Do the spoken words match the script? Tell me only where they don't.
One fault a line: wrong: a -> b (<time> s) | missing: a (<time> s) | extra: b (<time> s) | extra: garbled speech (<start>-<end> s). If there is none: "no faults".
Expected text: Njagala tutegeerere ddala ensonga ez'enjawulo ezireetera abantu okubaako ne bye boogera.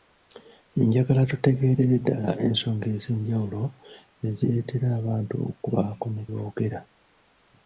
missing: bye (6.2 s)